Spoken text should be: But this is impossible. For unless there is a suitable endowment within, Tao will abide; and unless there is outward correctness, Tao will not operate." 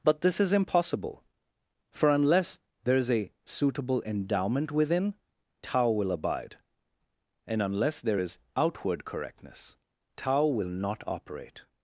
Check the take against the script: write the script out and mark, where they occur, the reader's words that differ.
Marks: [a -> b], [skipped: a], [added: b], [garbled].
But this is impossible. For unless there is a suitable endowment within, Tao will abide; and unless there is outward correctness, Tao will not operate."